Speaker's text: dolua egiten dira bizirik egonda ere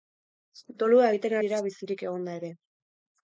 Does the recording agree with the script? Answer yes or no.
yes